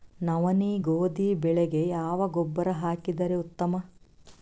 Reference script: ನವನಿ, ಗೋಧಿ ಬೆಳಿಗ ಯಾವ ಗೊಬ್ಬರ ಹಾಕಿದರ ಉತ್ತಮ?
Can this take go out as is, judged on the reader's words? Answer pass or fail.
pass